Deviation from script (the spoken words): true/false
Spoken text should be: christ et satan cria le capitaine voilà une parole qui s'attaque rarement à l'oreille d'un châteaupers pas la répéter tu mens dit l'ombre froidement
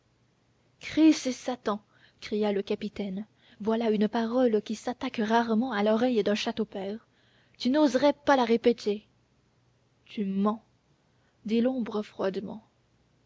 true